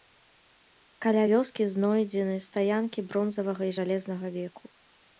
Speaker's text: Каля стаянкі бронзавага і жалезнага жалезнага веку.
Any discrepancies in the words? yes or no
yes